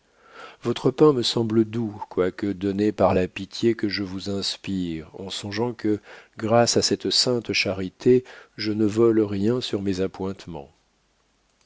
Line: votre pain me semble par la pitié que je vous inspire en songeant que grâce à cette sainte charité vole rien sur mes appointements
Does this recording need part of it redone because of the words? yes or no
yes